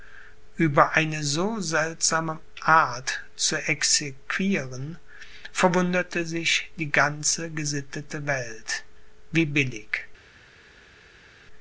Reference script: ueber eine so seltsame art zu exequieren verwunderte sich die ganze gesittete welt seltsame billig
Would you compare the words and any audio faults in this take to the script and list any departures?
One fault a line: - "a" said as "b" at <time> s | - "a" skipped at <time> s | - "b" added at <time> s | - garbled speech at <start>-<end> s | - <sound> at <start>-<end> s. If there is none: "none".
- "seltsame" said as "wie" at 9.3 s